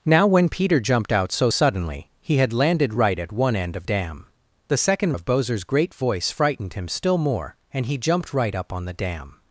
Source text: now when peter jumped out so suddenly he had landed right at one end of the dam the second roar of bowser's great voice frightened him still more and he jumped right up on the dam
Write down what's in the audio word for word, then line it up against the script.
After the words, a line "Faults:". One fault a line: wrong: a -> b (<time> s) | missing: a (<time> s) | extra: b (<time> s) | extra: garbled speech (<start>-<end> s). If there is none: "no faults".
now when peter jumped out so suddenly he had landed right at one end of dam the second of bowser's great voice frightened him still more and he jumped right up on the dam
Faults:
missing: the (3.8 s)
missing: roar (5.1 s)